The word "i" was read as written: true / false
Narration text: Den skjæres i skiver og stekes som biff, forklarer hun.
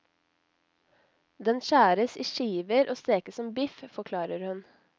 true